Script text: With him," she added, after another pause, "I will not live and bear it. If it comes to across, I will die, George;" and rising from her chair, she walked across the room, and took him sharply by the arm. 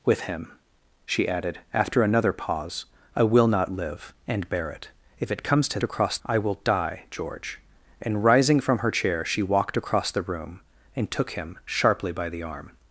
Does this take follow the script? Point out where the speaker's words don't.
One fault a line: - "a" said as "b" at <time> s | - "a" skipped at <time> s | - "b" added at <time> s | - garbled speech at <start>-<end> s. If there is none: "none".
none